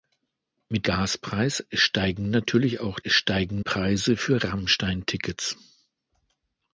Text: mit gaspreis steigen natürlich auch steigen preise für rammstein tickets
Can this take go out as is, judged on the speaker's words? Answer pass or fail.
pass